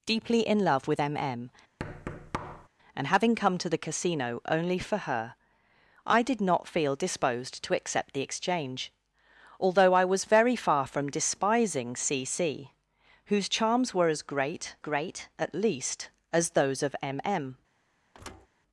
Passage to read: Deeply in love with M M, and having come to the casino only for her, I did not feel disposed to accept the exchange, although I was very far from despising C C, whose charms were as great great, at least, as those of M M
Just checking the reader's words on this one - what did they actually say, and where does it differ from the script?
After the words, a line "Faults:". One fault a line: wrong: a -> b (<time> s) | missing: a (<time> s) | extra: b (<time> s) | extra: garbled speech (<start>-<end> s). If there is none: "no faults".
Deeply in love with M M, and having come to the casino only for her, I did not feel disposed to accept the exchange, although I was very far from despising C C, whose charms were as great great, at least, as those of M M
Faults:
no faults